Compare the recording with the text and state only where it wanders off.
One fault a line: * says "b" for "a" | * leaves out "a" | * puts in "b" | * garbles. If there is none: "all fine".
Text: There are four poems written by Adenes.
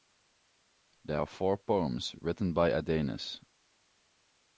all fine